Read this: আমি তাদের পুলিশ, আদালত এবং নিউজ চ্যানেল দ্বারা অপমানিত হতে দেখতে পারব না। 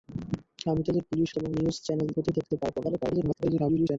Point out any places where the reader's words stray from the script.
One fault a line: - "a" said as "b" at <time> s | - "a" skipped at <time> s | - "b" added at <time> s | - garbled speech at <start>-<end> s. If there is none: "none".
- "আদালত" skipped at 1.3 s
- "দ্বারা অপমানিত" skipped at 2.1 s
- garbled speech at 2.8-4.0 s